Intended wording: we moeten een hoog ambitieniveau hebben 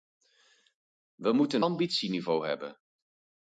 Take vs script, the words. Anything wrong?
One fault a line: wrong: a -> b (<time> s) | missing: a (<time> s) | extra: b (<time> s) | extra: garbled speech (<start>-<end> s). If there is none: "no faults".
missing: een hoog (1.6 s)